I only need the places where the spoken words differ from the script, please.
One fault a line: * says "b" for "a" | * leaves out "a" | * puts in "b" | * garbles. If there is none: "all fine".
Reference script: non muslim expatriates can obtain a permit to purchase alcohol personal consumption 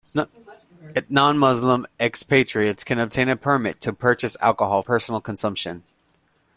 all fine